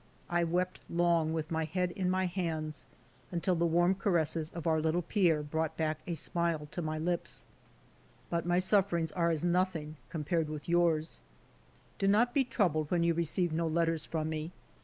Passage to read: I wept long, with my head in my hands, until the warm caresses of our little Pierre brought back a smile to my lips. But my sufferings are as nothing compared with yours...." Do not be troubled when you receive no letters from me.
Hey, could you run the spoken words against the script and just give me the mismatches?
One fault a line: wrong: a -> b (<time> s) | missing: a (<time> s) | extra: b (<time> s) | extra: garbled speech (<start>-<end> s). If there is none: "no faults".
no faults